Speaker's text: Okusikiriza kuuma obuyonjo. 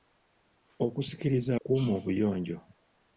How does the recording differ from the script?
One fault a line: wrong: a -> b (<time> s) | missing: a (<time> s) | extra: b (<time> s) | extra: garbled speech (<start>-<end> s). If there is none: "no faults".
no faults